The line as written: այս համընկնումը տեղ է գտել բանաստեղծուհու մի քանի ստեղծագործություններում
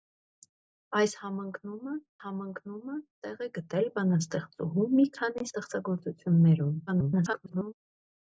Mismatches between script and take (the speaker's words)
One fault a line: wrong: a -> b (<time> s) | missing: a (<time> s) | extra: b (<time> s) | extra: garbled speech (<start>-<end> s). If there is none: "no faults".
extra: համընկնումը (2.2 s)
extra: garbled speech (6.9-7.7 s)